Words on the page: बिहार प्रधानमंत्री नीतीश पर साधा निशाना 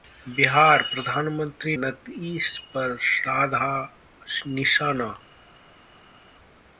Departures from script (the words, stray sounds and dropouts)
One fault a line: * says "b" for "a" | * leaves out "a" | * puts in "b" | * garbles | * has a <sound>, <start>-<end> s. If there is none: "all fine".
all fine